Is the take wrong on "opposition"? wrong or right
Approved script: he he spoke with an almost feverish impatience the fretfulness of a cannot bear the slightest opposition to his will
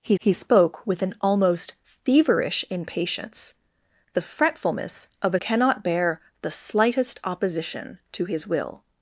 right